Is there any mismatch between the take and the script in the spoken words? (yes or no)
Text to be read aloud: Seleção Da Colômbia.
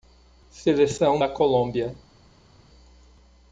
no